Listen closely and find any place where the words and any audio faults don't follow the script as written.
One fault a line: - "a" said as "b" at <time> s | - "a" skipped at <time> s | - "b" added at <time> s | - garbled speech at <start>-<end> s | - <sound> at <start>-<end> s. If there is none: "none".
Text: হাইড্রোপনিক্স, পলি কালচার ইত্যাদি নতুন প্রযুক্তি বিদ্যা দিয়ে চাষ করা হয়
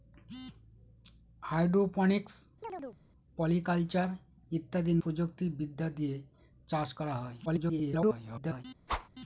- chirp at 2.6-3.0 s
- "নতুন" skipped at 4.9 s
- garbled speech at 7.5-8.6 s
- whoosh at 8.9-9.1 s